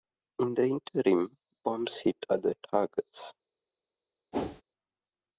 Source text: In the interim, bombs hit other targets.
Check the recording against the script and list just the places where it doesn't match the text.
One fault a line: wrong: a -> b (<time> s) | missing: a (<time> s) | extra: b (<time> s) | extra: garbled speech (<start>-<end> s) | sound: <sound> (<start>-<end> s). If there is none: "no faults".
sound: whoosh (4.3-4.6 s)